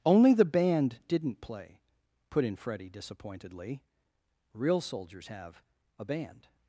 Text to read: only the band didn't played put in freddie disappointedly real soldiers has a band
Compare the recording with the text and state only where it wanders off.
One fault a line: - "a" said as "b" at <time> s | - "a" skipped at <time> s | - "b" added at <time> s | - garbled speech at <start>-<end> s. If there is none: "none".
- "played" said as "play" at 1.4 s
- "has" said as "have" at 5.3 s